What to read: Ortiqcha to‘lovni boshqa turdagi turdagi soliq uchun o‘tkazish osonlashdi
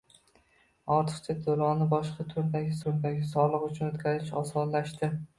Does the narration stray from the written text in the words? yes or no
no